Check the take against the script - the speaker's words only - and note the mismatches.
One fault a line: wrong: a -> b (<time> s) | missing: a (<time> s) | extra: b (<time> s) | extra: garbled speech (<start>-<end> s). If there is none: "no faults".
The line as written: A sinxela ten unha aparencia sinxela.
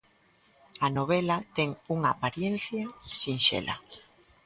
wrong: sinxela -> novela (1.0 s)